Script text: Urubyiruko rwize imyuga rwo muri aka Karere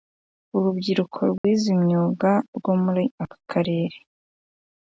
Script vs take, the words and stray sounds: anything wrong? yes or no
yes